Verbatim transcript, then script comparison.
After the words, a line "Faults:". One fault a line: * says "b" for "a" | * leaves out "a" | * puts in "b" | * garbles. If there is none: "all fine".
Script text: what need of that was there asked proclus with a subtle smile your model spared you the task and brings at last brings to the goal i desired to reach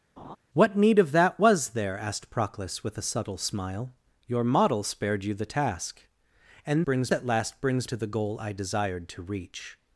what need of that was there asked proclus with a subtle smile your model spared you the task and brings at last brings to the goal i desired to reach
Faults:
all fine